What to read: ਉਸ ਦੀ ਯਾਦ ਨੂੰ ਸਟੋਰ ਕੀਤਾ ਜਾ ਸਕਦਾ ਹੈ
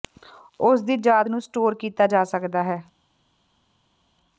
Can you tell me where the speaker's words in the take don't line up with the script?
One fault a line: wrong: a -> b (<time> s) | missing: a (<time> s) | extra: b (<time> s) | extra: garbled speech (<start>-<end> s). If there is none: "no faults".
no faults